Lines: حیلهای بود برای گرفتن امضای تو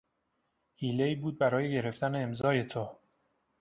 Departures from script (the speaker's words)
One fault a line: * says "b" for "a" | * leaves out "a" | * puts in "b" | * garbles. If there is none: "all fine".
all fine